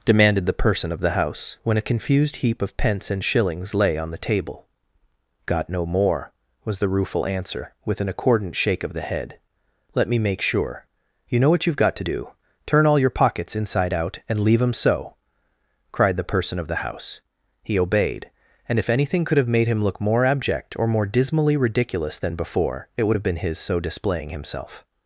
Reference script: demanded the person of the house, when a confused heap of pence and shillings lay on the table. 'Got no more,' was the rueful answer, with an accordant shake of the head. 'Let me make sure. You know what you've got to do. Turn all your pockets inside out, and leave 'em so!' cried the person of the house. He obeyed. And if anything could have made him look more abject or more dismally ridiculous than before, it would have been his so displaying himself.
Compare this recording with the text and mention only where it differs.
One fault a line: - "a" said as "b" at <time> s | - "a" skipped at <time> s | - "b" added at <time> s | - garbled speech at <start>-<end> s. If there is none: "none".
none